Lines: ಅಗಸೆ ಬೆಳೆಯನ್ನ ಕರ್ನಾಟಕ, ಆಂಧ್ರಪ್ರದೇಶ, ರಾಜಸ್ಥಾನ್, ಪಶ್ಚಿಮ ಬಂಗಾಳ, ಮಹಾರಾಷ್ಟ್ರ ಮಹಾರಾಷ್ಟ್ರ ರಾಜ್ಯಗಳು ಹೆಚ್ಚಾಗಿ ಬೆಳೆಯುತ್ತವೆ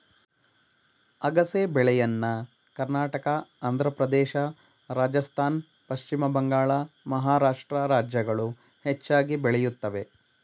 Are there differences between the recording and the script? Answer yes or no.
yes